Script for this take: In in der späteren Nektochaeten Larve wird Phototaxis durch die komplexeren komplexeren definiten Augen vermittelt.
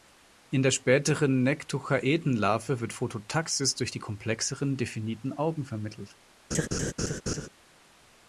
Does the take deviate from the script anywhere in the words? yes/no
yes